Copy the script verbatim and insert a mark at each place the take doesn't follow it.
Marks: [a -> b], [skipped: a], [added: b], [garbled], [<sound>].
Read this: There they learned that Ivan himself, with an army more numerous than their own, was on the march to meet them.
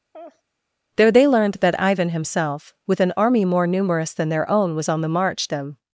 [laugh] There they learned that Ivan himself, with an army more numerous than their own, was on the march [skipped: to meet] them.